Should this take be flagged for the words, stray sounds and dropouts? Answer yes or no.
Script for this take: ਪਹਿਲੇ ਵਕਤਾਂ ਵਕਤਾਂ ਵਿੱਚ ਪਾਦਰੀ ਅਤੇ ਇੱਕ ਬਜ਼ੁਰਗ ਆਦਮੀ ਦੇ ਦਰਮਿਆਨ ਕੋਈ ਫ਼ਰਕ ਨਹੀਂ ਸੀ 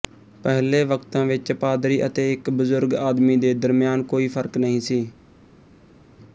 yes